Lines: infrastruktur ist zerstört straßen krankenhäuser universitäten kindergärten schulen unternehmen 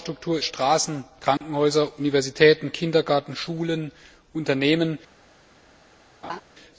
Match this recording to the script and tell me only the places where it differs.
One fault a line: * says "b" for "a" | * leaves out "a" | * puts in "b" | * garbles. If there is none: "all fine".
* leaves out "ist zerstört"